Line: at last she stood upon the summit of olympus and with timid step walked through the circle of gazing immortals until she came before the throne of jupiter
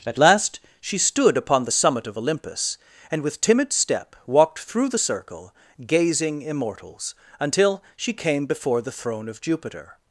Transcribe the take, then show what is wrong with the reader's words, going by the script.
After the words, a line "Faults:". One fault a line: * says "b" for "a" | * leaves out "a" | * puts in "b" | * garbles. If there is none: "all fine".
at last she stood upon the summit of olympus and with timid step walked through the circle gazing immortals until she came before the throne of jupiter
Faults:
* leaves out "of"